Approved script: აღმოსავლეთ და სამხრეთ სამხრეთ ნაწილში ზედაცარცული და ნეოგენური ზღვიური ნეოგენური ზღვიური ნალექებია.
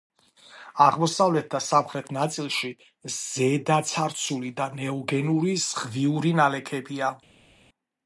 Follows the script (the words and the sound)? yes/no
no